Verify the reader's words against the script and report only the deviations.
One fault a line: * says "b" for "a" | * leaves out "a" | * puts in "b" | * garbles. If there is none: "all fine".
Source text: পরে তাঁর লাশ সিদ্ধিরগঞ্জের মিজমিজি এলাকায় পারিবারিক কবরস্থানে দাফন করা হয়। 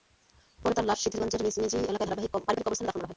all fine